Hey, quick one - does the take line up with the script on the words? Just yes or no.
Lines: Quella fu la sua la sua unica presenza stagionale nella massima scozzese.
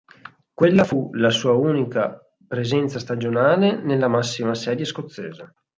no